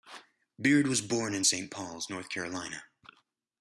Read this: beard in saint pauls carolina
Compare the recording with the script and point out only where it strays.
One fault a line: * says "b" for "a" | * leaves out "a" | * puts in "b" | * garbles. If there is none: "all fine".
* puts in "was born"
* puts in "north"